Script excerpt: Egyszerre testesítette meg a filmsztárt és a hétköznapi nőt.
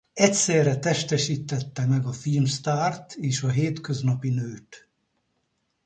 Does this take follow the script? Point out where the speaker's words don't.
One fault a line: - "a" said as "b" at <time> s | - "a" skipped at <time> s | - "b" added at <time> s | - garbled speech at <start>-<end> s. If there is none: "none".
none